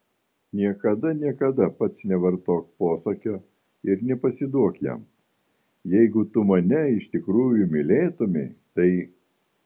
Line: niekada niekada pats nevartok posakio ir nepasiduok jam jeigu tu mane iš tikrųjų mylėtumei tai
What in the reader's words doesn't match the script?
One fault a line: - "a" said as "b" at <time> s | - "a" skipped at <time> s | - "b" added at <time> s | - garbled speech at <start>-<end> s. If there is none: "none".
none